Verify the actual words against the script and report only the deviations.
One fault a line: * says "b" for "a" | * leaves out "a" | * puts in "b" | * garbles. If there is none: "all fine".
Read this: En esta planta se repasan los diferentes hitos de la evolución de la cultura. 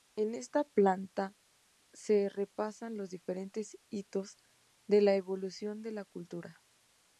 all fine